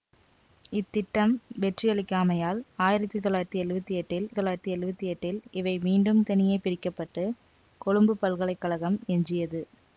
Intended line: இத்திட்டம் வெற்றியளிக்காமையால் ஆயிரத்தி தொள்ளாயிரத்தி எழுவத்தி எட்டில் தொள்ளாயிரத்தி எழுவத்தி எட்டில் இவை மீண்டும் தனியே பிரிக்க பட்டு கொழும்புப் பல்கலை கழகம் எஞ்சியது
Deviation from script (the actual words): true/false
false